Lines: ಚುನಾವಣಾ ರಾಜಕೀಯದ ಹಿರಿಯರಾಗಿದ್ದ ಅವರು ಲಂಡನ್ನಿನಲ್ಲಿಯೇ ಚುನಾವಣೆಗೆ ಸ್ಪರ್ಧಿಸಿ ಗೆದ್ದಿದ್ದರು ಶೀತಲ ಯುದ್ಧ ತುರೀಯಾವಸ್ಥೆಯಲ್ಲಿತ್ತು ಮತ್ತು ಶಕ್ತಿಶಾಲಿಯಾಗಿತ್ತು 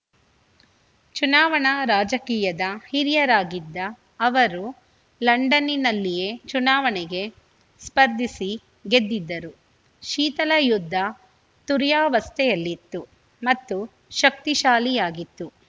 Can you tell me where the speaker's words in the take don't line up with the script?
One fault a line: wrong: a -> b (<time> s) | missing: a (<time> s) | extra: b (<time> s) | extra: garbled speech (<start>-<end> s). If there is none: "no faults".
no faults